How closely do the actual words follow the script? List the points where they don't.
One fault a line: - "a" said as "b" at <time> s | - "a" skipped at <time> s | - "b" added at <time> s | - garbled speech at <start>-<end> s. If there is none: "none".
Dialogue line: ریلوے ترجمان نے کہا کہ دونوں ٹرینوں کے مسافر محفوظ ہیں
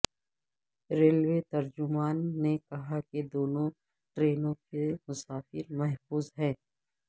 none